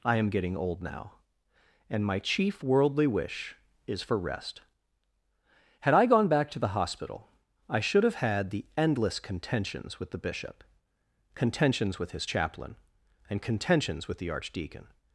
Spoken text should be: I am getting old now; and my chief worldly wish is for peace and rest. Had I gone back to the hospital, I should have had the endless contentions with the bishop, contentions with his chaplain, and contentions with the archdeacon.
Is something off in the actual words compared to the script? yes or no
yes